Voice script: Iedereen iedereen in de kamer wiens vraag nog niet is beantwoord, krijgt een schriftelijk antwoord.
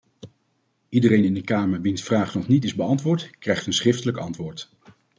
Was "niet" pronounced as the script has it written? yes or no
yes